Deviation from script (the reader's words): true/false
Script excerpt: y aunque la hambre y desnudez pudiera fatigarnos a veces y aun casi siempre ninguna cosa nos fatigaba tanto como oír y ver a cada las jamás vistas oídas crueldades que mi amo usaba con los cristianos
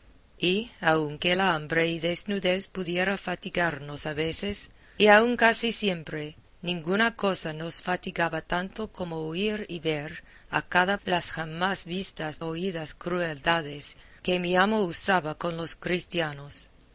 false